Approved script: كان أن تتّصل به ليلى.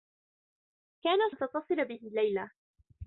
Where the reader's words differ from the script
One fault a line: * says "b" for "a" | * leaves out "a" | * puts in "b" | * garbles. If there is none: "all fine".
all fine